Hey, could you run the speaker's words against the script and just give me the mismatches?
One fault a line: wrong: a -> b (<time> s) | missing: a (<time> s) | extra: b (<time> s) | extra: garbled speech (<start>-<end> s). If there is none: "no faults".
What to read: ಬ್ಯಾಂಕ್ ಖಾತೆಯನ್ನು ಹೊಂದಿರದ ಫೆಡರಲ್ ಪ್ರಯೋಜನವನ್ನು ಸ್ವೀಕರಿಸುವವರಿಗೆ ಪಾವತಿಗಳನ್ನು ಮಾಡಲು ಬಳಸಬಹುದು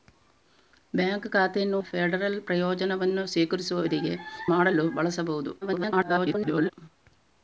missing: ಹೊಂದಿರದ (1.8 s)
missing: ಪಾವತಿಗಳನ್ನು (4.1 s)
extra: garbled speech (5.6-6.7 s)